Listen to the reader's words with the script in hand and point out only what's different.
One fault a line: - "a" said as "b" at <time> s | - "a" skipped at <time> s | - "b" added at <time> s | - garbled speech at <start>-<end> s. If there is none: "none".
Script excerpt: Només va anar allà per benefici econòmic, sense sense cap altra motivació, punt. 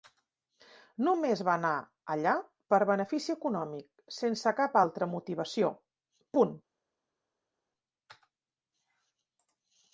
- "sense" skipped at 4.5 s